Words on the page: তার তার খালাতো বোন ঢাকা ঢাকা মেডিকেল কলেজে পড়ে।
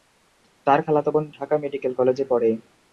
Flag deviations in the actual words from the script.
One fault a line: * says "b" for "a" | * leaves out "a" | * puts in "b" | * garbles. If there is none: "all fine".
* leaves out "তার"
* leaves out "ঢাকা"